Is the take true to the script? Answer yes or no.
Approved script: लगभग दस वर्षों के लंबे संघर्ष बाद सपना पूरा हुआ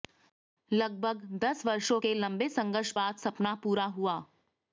yes